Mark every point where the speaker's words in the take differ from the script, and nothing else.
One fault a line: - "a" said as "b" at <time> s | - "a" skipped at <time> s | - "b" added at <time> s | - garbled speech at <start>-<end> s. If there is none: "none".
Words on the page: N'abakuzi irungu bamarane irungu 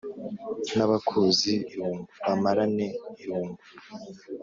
none